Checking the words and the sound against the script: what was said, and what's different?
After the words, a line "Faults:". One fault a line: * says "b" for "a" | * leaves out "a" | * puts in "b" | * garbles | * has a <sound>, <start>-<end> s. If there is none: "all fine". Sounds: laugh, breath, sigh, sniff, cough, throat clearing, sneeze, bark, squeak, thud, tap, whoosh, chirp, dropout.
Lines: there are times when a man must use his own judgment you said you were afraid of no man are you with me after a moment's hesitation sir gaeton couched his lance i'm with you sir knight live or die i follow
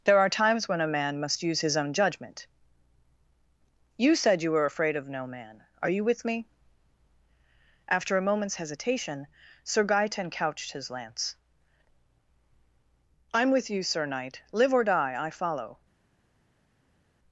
there are times when a man must use his own judgment you said you were afraid of no man are you with me after a moment's hesitation sir gaeton couched his lance i'm with you sir knight live or die i follow
Faults:
all fine